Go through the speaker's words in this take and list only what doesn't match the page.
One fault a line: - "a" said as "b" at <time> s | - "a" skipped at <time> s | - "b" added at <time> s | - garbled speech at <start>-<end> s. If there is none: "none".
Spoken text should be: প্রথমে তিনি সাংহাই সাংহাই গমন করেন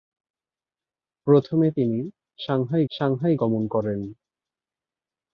none